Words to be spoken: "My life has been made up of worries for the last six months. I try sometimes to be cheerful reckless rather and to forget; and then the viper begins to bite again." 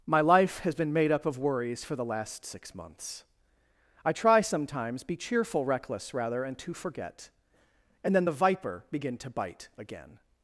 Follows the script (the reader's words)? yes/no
no